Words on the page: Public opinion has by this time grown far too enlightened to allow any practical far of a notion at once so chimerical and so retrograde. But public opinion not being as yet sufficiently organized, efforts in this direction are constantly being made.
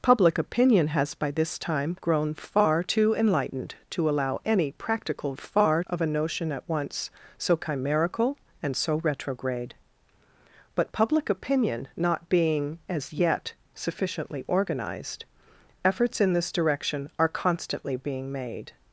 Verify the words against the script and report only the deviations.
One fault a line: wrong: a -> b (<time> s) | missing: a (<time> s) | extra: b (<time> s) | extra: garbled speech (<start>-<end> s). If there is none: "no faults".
no faults